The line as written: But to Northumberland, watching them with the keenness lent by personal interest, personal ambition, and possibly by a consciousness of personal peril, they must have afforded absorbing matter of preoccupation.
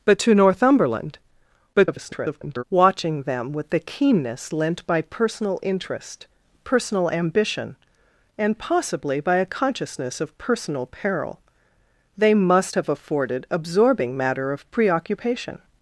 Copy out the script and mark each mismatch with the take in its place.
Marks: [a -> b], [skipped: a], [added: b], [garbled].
But to Northumberland, [garbled] watching them with the keenness lent by personal interest, personal ambition, and possibly by a consciousness of personal peril, they must have afforded absorbing matter of preoccupation.